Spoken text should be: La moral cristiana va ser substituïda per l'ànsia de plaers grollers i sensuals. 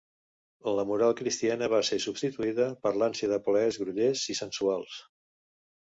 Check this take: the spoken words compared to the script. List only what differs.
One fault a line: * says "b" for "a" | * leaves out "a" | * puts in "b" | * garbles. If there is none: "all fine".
all fine